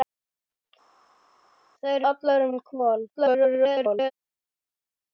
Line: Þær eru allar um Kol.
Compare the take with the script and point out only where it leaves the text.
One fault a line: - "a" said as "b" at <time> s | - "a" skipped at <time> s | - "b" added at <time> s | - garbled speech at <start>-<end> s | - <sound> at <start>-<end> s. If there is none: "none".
- "eru" skipped at 2.1 s
- garbled speech at 3.1-4.1 s